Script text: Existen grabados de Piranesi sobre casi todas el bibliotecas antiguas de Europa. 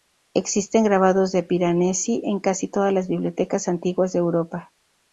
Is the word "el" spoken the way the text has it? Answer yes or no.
no